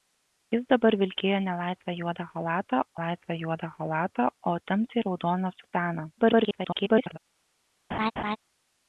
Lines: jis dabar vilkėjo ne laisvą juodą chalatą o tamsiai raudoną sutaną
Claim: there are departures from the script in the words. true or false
true